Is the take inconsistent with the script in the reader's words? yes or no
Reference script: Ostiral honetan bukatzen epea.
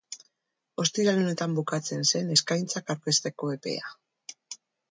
yes